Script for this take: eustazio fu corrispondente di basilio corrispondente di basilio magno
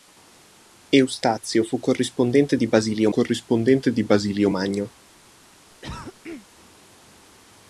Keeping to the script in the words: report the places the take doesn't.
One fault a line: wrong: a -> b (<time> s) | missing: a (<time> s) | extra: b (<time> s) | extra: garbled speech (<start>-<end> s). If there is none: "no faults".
no faults